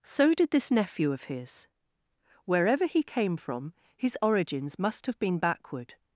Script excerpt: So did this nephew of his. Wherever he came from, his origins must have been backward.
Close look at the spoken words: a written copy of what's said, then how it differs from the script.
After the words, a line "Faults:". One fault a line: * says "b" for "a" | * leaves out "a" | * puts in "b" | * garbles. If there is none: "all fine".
So did this nephew of his. Wherever he came from, his origins must have been backward.
Faults:
all fine